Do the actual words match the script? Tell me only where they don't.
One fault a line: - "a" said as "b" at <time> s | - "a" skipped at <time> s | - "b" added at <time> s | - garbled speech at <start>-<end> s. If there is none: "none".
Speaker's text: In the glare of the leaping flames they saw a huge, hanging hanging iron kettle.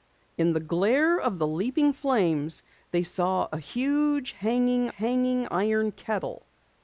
none